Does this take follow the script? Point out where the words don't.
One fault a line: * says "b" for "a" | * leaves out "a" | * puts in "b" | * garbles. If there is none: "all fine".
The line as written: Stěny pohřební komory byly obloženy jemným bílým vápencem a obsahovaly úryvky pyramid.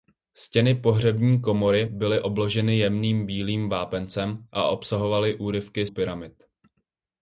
all fine